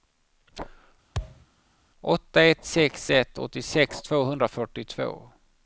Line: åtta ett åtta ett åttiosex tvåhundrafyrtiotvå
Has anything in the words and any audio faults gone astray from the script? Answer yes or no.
yes